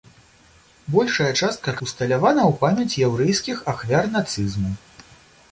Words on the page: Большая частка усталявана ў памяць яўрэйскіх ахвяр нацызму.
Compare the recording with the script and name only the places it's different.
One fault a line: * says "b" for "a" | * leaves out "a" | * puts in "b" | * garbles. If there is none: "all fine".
all fine